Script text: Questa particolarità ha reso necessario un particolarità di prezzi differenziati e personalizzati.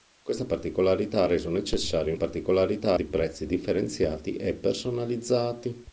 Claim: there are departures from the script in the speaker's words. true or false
false